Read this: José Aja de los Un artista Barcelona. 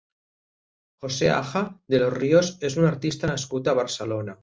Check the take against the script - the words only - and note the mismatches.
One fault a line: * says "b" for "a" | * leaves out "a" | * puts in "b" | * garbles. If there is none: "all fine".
* puts in "Ríos és"
* puts in "nascut a"